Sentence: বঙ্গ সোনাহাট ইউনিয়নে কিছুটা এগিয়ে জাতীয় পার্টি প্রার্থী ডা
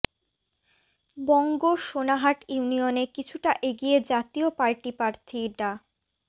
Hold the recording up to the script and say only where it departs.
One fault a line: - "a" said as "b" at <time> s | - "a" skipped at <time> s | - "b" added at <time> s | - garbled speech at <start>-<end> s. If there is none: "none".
none